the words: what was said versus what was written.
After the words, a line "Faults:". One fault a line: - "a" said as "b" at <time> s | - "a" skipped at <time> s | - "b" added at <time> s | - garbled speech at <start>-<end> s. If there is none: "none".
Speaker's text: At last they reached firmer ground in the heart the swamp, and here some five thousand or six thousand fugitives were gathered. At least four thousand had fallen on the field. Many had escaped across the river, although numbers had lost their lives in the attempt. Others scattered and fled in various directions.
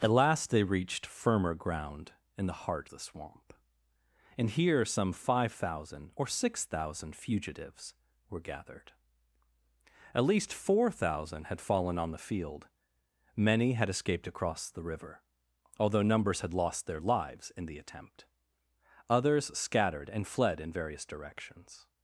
At last they reached firmer ground in the heart the swamp, and here some five thousand or six thousand fugitives were gathered. At least four thousand had fallen on the field. Many had escaped across the river, although numbers had lost their lives in the attempt. Others scattered and fled in various directions.
Faults:
none